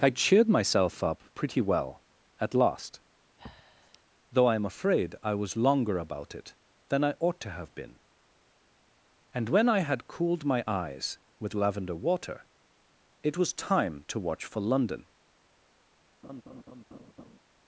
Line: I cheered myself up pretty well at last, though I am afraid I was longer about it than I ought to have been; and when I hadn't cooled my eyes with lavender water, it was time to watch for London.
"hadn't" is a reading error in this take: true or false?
true